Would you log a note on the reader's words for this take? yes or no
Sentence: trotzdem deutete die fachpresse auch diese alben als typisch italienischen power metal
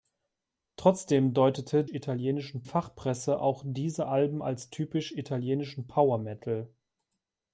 yes